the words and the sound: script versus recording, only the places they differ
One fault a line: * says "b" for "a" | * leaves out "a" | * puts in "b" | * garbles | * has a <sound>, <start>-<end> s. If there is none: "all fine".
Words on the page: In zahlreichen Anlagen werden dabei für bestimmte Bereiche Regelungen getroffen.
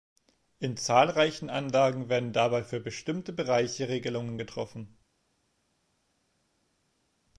all fine